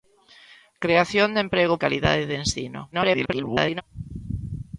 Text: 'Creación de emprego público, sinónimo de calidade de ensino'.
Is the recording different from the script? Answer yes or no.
yes